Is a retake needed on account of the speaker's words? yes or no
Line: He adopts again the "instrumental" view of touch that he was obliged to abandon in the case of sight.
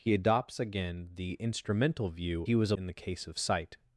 yes